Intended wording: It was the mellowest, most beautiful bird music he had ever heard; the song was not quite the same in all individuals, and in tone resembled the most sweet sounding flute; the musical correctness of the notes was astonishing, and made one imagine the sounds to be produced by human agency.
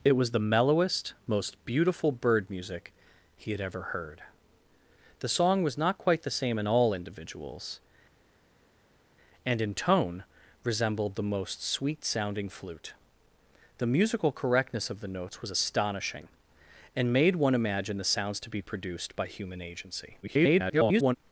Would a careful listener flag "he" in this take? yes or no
no